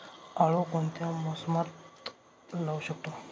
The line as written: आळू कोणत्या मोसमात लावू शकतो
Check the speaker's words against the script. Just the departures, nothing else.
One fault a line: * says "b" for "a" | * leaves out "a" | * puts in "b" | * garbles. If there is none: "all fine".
all fine